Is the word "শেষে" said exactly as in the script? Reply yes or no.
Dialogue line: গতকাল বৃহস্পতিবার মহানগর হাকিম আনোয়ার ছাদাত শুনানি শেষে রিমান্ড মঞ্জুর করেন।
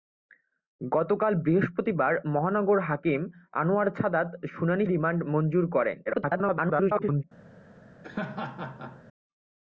no